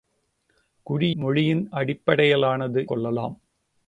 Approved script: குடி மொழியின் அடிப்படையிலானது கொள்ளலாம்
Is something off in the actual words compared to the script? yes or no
no